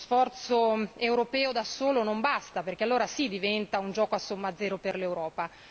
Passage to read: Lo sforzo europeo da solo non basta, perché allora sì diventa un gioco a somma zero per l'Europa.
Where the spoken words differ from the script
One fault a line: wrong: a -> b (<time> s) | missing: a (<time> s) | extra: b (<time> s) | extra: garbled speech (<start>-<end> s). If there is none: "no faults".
no faults